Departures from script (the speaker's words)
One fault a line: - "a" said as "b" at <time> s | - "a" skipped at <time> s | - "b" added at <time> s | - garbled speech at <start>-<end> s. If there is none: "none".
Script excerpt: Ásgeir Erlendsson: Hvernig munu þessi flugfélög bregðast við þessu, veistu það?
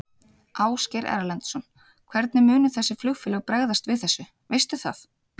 none